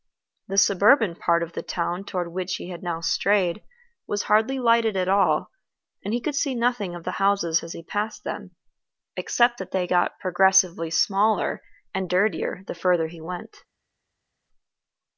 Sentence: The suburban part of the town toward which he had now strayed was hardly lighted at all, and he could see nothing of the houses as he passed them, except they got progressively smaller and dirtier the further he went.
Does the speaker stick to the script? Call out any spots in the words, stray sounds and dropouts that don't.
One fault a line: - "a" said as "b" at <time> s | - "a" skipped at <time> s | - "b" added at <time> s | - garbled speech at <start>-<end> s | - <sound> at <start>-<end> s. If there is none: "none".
- "that" added at 9.6 s